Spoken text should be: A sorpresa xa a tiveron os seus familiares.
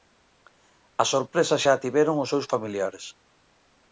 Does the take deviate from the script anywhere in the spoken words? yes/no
no